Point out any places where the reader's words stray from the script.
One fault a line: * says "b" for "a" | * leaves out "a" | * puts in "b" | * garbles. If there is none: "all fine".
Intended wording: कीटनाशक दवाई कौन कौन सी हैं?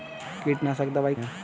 * leaves out "कौन कौन सी"